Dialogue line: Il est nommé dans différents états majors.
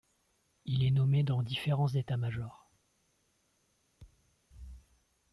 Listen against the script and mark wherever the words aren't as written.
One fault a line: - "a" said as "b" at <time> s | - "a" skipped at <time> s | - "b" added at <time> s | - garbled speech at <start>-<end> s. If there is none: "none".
none